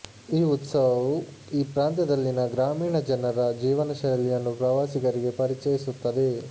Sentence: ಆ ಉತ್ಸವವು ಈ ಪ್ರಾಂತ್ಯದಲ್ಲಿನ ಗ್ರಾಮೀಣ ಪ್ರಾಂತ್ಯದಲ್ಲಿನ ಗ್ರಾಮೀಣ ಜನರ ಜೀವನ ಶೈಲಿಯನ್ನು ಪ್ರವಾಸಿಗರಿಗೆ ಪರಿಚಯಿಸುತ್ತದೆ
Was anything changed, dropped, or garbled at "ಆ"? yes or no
yes